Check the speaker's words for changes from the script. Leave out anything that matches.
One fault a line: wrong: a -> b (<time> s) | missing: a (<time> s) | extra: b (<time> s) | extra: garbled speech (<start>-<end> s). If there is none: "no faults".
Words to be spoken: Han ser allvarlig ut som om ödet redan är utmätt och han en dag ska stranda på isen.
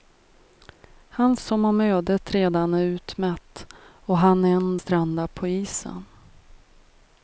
missing: ser allvarlig ut (1.4 s)
missing: dag ska (4.8 s)